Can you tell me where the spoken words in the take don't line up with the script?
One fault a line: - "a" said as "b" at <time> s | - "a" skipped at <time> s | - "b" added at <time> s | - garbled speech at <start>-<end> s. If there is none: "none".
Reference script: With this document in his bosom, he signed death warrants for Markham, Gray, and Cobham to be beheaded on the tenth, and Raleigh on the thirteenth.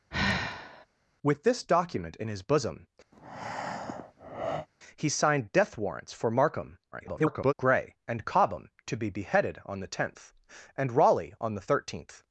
- garbled speech at 6.9-7.5 s